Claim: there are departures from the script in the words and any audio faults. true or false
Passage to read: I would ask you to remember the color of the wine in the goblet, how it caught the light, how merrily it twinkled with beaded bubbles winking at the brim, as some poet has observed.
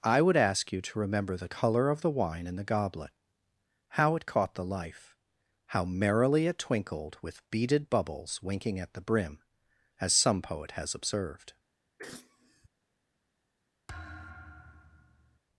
true